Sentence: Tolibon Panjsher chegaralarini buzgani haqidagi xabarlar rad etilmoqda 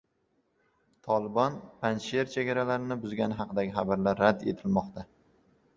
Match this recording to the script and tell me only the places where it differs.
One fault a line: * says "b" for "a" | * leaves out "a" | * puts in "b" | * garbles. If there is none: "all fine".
all fine